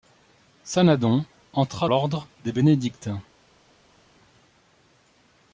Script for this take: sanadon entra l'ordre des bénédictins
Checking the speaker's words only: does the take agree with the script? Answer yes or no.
yes